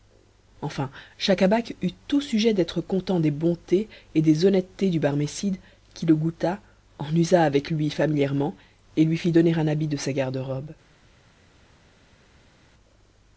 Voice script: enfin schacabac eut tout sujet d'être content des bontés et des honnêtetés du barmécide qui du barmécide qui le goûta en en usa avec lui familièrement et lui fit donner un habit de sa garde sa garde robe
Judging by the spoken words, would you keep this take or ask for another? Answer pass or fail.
fail